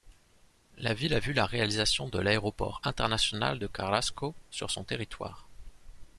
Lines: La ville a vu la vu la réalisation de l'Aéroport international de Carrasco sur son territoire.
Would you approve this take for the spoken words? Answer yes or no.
no